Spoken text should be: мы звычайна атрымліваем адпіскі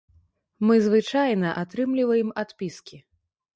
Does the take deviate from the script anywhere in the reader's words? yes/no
no